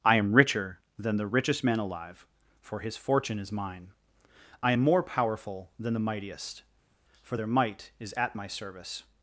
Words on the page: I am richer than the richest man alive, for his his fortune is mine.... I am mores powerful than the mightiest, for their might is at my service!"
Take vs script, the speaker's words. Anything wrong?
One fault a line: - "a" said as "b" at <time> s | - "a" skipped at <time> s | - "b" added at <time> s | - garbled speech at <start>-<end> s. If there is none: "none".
- "his" skipped at 3.0 s
- "mores" said as "more" at 4.8 s